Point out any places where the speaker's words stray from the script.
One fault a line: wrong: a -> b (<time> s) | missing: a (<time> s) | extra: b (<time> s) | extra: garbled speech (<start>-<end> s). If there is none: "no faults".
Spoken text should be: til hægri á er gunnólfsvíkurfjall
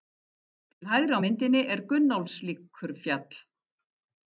extra: myndinni (1.2 s)